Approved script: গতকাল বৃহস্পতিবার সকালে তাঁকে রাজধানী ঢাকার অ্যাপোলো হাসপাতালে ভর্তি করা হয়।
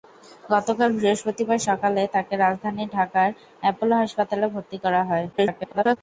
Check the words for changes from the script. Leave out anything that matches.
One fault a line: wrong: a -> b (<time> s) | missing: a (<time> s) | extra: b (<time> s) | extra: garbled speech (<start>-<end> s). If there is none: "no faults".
extra: garbled speech (5.3-6.0 s)